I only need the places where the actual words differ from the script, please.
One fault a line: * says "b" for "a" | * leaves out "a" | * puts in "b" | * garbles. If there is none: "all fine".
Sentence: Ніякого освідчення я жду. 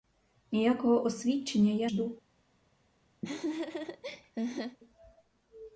all fine